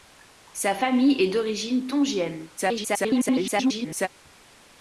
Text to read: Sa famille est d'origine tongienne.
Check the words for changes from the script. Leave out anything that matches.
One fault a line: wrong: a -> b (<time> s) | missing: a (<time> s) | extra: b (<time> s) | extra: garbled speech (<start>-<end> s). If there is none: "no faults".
extra: garbled speech (2.6-4.1 s)